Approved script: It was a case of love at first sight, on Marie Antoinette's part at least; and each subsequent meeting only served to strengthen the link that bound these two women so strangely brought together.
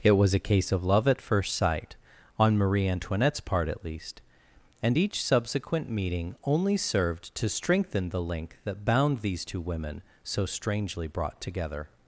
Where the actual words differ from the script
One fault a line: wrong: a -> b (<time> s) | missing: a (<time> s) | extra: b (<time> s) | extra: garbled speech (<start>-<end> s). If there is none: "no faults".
no faults